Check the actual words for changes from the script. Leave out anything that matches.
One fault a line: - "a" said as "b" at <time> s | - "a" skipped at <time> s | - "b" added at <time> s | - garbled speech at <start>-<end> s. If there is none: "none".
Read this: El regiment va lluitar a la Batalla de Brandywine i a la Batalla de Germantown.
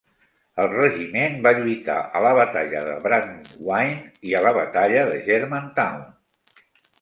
none